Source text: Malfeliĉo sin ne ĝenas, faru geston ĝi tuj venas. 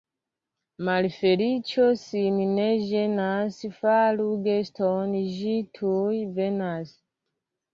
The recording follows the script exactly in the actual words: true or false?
true